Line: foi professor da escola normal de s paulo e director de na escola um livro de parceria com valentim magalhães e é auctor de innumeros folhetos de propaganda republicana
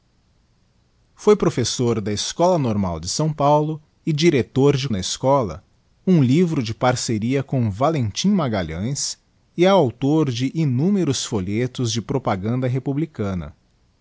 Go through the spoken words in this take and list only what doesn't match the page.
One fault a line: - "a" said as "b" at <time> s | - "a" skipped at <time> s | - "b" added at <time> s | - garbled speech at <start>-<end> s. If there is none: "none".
none